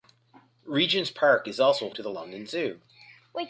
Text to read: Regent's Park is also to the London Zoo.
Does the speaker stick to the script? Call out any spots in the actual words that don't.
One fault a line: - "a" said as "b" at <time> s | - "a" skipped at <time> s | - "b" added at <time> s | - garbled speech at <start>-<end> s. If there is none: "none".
none